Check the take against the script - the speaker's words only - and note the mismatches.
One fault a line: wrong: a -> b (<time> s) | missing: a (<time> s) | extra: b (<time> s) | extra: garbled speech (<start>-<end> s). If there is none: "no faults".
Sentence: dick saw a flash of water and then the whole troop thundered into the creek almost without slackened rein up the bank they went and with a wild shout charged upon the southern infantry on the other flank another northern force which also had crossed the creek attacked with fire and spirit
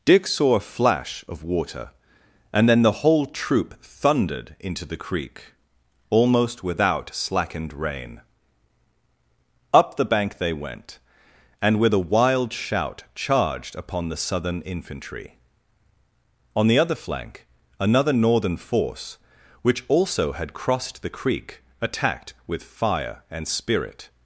no faults